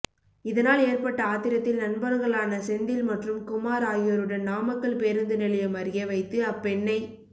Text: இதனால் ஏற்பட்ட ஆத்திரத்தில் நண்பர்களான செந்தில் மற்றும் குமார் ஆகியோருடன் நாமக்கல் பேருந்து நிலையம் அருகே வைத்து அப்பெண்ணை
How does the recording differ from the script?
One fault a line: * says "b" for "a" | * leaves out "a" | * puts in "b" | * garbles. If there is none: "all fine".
all fine